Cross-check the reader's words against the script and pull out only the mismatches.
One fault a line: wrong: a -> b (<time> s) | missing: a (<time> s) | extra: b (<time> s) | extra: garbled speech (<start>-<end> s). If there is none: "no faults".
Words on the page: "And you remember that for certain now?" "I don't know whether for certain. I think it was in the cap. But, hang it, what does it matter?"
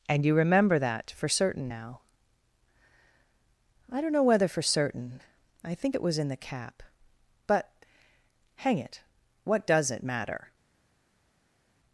no faults